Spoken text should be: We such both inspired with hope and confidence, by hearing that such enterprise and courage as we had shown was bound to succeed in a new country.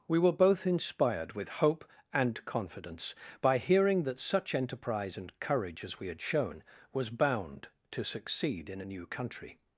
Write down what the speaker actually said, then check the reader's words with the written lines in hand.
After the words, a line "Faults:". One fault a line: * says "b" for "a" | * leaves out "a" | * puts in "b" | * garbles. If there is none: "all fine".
We were both inspired with hope and confidence, by hearing that such enterprise and courage as we had shown was bound to succeed in a new country.
Faults:
* says "were" for "such"